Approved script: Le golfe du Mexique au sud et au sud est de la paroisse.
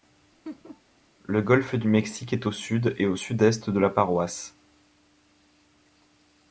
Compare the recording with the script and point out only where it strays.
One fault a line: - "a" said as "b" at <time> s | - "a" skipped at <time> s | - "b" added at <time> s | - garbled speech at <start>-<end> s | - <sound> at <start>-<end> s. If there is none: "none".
- laugh at 0.4-0.8 s
- "est" added at 2.3 s